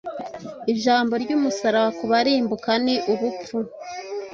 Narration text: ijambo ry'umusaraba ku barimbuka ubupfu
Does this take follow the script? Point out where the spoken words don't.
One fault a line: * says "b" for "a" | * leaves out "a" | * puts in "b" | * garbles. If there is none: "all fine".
* puts in "ni"